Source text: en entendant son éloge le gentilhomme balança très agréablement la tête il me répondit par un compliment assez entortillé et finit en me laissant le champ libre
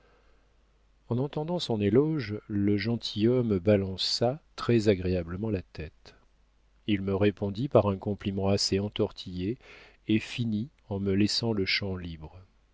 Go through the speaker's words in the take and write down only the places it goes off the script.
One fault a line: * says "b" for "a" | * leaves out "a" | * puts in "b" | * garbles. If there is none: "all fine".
all fine